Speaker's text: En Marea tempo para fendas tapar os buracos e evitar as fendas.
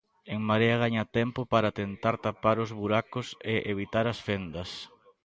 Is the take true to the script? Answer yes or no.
no